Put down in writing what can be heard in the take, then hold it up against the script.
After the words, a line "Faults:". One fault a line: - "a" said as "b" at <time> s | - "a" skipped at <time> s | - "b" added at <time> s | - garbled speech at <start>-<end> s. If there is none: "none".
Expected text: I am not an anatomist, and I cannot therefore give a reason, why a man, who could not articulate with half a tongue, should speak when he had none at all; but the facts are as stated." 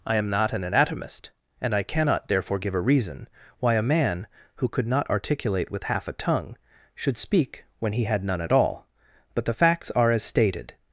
I am not an anatomist, and I cannot therefore give a reason, why a man, who could not articulate with half a tongue, should speak when he had none at all; but the facts are as stated."
Faults:
none